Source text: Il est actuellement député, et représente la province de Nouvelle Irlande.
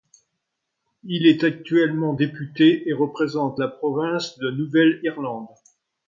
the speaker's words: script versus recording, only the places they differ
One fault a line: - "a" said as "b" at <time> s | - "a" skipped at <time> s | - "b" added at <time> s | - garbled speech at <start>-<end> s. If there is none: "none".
none